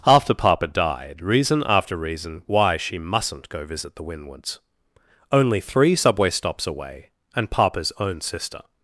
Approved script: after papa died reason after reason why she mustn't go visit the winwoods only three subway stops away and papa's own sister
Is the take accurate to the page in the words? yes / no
yes